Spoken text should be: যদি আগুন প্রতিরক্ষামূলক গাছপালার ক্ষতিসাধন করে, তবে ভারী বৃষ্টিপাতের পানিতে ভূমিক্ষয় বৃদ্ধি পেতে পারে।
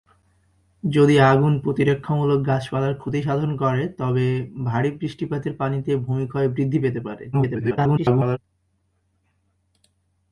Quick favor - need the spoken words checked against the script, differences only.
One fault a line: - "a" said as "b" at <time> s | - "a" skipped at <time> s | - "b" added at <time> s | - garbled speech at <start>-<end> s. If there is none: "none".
- garbled speech at 7.3-8.4 s